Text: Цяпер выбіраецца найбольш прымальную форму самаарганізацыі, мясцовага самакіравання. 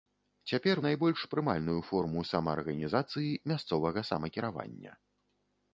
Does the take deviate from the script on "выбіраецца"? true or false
true